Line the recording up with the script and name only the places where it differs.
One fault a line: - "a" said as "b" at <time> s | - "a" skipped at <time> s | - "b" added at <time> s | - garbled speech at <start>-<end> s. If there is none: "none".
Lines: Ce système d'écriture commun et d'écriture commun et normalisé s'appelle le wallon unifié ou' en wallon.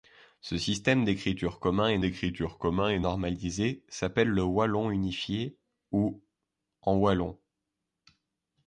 none